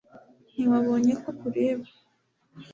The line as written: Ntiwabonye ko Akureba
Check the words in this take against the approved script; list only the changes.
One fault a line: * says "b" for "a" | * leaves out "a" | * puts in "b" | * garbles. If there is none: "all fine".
all fine